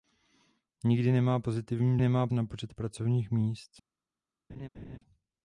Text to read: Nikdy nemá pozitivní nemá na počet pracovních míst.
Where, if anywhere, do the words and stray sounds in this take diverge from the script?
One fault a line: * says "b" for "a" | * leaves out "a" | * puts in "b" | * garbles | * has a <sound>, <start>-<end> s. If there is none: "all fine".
* has a laugh, 4.5-5.0 s